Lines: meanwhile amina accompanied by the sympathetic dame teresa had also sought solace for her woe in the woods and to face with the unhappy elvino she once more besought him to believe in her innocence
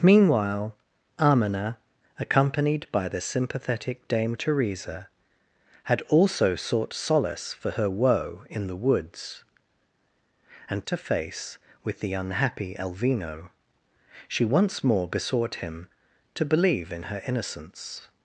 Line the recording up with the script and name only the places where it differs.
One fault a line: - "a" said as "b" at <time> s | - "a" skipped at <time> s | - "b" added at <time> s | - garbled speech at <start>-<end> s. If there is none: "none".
none